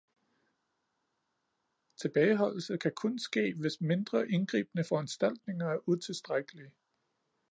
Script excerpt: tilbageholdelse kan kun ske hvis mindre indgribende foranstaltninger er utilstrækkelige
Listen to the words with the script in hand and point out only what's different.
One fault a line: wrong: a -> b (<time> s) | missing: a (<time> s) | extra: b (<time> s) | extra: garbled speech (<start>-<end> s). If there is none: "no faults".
no faults